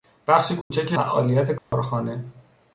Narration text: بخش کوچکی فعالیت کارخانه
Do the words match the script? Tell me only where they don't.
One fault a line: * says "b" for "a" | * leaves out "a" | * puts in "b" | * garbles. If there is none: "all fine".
all fine